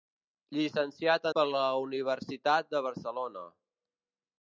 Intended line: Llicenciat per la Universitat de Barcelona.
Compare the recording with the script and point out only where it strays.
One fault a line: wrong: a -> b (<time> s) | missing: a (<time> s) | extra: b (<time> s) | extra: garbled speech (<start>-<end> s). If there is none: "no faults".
no faults